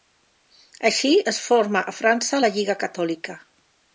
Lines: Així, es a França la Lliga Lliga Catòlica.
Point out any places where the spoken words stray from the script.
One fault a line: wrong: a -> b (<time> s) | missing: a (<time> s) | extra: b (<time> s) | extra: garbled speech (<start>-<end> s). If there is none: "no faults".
extra: forma (1.5 s)
missing: Lliga (2.8 s)